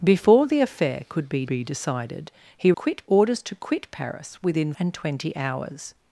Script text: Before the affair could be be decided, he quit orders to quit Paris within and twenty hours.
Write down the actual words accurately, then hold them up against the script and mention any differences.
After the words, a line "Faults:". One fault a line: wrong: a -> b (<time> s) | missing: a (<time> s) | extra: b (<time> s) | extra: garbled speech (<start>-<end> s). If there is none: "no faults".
Before the affair could be be decided, he quit orders to quit Paris within and twenty hours.
Faults:
no faults